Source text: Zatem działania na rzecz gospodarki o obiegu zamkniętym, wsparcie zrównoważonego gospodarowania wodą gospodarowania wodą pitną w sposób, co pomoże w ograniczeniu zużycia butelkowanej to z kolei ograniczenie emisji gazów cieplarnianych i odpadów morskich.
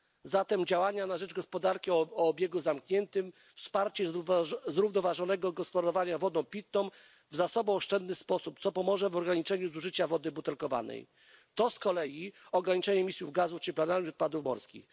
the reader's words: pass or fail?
fail